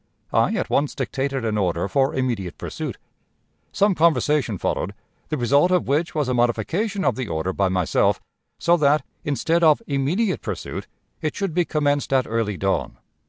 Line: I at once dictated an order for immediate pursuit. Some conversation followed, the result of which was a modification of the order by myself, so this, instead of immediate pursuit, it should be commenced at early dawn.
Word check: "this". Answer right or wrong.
wrong